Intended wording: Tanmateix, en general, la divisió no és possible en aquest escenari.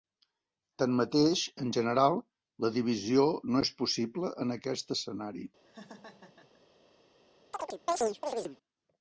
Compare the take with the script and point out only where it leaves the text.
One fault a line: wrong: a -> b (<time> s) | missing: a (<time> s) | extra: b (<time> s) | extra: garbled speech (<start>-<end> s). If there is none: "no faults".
no faults